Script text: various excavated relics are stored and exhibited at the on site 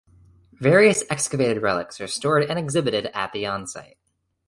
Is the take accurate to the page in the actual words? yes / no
yes